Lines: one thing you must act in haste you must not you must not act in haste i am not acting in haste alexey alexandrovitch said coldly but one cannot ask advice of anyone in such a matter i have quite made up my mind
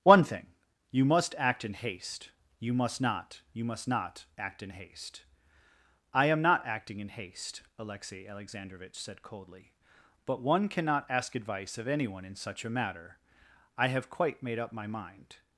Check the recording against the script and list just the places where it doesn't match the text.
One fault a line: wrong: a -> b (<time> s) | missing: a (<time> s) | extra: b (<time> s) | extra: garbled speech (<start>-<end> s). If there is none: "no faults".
no faults